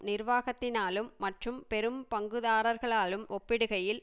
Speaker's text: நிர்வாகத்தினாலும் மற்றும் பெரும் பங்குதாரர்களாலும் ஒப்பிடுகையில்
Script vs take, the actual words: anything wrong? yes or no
no